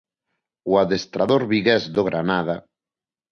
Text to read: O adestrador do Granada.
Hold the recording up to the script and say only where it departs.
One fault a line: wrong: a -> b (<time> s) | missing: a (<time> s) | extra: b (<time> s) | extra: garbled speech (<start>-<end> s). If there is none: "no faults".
extra: vigués (1.5 s)